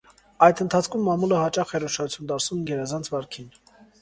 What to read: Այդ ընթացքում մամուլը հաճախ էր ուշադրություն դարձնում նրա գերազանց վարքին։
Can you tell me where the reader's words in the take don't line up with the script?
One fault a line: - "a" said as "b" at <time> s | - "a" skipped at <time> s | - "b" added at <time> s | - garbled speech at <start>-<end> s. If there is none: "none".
- "նրա" skipped at 2.6 s